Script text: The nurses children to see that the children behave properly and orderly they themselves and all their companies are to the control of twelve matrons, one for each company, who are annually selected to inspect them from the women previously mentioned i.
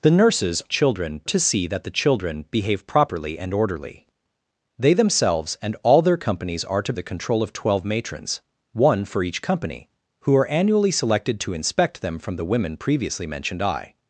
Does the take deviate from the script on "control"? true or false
false